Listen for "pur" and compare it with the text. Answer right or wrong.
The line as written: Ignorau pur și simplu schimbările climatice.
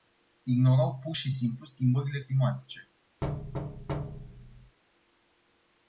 right